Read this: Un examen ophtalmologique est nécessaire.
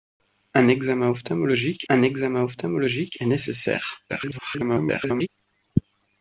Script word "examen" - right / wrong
right